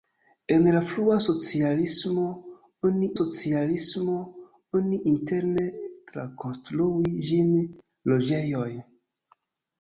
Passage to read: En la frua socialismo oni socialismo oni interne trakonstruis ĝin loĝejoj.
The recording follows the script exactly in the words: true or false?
true